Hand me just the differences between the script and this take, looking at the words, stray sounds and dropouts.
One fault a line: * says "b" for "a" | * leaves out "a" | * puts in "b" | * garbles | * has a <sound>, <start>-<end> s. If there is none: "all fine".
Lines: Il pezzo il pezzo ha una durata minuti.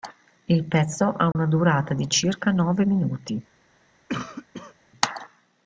* leaves out "il pezzo"
* has a dropout, 1.3-1.4 s
* puts in "di circa nove"
* has a cough, 4.1-4.7 s